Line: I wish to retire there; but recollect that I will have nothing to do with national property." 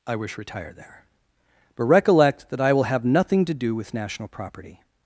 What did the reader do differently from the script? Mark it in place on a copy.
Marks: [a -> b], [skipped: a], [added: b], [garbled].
I wish [skipped: to] retire there; but recollect that I will have nothing to do with national property."